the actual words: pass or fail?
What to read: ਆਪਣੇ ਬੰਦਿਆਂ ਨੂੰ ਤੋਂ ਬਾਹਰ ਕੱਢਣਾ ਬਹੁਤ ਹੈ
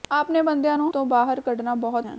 pass